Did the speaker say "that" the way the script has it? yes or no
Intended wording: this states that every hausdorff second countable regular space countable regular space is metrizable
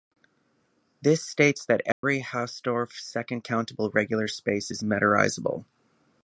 yes